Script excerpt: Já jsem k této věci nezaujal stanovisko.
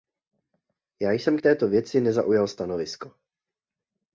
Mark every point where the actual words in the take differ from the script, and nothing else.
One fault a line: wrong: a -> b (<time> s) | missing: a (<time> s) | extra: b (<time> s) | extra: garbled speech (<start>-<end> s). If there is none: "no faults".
no faults